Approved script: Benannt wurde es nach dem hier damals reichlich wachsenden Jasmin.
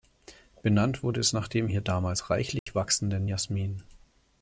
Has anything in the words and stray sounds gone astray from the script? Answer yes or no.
yes